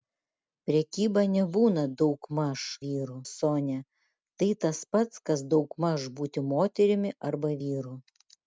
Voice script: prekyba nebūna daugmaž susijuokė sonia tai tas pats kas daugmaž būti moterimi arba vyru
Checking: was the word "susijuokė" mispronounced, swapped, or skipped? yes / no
yes